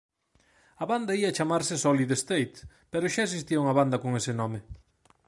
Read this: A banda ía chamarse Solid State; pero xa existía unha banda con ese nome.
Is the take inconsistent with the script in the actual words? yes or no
no